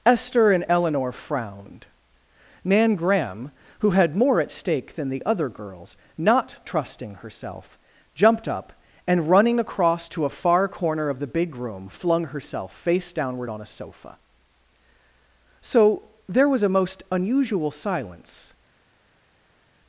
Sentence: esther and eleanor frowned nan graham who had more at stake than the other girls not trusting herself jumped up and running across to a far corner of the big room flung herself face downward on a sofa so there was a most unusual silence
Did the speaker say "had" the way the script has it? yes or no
yes